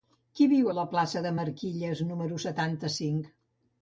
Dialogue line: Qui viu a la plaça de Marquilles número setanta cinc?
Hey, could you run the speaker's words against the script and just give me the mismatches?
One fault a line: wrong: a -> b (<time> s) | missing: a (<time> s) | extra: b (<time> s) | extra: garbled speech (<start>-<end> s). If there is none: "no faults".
no faults